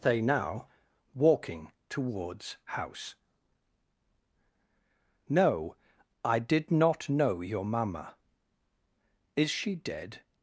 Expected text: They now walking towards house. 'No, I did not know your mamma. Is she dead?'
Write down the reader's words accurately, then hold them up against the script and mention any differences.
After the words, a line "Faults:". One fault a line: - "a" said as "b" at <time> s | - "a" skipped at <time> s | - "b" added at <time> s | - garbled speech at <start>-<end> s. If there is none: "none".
They now walking towards house. 'No, I did not know your mamma. Is she dead?'
Faults:
none